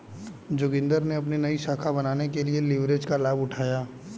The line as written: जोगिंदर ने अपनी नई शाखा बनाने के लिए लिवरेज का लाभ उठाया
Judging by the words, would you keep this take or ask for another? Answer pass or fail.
pass